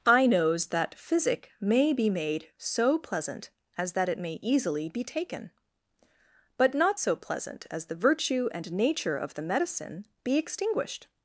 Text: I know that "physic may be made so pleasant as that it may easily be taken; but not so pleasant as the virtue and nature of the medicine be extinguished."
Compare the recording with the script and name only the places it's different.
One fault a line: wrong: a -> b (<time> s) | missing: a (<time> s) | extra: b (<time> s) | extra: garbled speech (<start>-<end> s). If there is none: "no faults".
wrong: know -> knows (0.2 s)